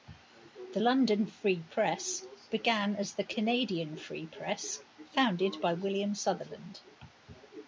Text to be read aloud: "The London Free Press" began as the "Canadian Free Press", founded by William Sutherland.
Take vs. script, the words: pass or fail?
pass